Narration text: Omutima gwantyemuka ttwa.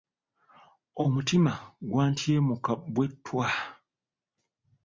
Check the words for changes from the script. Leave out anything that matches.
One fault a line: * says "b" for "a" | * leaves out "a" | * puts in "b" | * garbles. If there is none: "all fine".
* puts in "bwe"